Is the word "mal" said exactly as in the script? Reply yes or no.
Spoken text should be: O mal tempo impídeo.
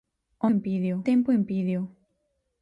no